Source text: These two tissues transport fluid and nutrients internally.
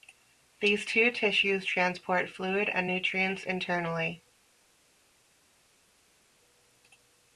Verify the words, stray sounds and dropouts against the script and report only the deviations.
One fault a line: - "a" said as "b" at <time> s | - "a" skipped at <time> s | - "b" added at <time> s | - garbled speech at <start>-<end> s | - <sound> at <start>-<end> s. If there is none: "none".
none